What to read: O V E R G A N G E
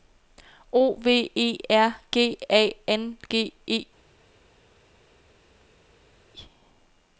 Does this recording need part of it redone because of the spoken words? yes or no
no